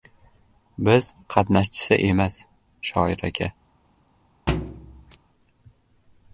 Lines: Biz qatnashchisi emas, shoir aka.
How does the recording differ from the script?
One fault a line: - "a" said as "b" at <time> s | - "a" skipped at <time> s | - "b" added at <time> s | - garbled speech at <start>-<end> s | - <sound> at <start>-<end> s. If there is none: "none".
- thud at 4.5-5.2 s